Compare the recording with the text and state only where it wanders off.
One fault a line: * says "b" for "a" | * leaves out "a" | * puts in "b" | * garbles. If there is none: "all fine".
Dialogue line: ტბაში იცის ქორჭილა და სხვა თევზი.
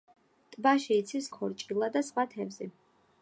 all fine